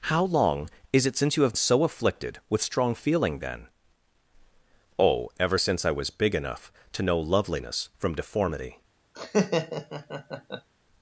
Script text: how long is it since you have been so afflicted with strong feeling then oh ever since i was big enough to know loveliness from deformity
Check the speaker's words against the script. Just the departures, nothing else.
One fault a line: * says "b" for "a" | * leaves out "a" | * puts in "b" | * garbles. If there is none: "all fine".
* leaves out "been"